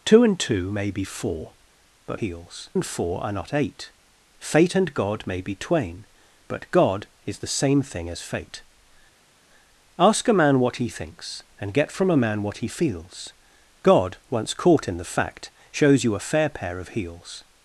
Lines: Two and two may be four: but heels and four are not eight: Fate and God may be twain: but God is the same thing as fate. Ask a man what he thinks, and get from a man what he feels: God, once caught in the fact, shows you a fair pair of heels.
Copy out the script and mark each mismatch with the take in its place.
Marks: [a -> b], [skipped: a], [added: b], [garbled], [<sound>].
Two and two may be four: but heels and four are not eight: Fate and God may be twain: but God is the same thing as fate. Ask a man what he thinks, and get from a man what he feels: God, once caught in the fact, shows you a fair pair of heels.